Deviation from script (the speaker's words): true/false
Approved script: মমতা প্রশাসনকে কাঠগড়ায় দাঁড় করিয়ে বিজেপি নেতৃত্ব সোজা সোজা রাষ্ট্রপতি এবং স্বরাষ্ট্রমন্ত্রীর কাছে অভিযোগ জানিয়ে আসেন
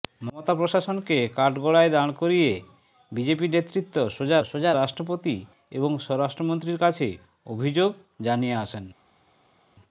false